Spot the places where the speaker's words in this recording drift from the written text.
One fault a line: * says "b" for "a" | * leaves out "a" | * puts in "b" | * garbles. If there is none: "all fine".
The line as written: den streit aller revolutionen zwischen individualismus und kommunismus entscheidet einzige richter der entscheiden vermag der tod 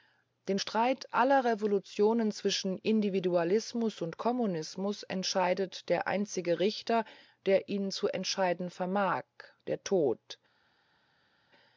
* puts in "der"
* puts in "ihn zu"